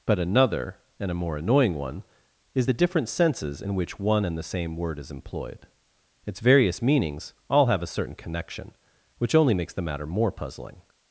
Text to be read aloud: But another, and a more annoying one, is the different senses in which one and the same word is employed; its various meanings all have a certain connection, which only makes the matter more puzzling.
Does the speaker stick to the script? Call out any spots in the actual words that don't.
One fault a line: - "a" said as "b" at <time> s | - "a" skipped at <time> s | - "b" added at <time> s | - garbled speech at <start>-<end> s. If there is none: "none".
none